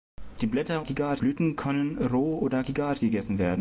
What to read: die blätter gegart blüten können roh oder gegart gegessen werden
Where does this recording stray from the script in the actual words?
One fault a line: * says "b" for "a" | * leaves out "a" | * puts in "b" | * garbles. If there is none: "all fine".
all fine